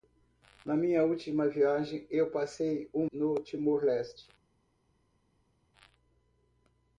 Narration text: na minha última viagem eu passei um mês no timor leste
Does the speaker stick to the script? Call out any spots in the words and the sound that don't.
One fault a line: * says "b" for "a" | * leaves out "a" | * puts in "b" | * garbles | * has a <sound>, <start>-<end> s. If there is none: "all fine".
* leaves out "mês"